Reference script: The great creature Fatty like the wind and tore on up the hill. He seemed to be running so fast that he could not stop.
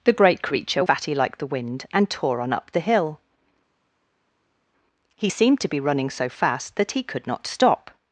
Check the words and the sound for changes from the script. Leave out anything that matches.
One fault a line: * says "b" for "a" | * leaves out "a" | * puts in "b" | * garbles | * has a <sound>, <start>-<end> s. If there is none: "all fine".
all fine